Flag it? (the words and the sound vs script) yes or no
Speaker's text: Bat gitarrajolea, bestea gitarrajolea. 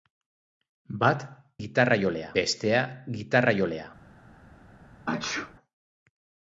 yes